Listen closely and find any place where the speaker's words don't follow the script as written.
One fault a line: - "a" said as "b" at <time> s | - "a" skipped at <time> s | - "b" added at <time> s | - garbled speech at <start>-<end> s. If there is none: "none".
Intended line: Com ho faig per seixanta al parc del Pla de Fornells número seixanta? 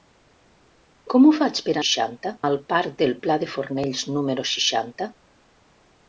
none